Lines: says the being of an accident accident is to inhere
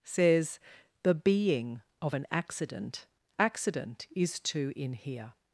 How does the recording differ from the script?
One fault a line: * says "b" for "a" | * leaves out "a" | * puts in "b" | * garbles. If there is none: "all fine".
all fine